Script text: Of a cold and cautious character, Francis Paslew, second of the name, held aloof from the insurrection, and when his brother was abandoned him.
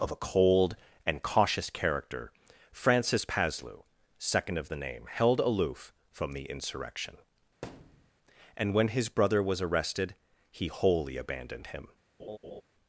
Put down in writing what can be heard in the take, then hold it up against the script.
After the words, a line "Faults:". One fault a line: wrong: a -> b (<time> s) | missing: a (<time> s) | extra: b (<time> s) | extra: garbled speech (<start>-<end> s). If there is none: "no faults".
Of a cold and cautious character, Francis Paslew, second of the name, held aloof from the insurrection, and when his brother was arrested he wholly abandoned him.
Faults:
extra: arrested he wholly (9.6 s)